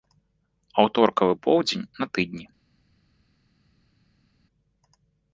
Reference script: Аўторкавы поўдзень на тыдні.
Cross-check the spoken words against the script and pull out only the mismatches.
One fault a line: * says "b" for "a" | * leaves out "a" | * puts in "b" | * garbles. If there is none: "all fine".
all fine